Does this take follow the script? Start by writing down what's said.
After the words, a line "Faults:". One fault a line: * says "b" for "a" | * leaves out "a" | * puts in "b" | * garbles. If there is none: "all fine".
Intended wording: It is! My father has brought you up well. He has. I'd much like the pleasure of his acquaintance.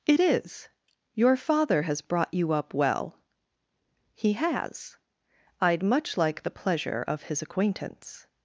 It is! Your father has brought you up well. He has. I'd much like the pleasure of his acquaintance.
Faults:
* says "Your" for "My"